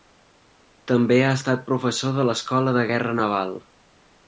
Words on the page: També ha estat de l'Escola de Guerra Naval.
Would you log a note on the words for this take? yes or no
yes